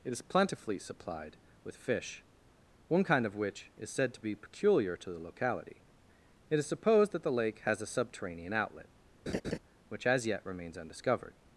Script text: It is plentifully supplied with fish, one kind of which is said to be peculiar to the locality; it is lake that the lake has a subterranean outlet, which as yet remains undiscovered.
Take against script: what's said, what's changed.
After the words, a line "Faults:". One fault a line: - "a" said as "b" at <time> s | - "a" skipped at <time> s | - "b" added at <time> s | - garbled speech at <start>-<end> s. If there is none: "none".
It is plentifully supplied with fish, one kind of which is said to be peculiar to the locality; it is supposed that the lake has a subterranean outlet, which as yet remains undiscovered.
Faults:
- "lake" said as "supposed" at 6.7 s